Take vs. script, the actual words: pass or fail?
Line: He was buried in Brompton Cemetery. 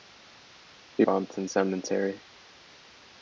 fail